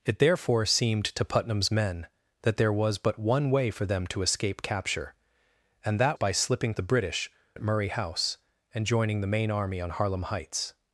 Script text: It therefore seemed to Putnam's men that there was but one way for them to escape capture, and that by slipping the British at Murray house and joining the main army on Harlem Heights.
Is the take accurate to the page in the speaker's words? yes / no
yes